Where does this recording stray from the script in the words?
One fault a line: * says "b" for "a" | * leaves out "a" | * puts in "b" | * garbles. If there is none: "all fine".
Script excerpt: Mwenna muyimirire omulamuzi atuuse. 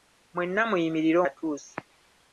* leaves out "omulamuzi"